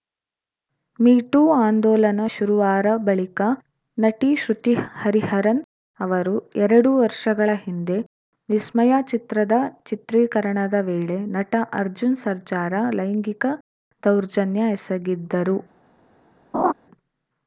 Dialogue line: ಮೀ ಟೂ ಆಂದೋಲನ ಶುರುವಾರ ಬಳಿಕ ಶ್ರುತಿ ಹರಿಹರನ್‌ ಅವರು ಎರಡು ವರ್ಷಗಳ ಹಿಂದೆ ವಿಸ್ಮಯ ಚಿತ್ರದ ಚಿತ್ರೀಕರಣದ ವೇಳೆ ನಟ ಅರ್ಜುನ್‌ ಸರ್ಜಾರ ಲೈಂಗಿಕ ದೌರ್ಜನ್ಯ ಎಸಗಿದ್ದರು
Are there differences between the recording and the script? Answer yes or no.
yes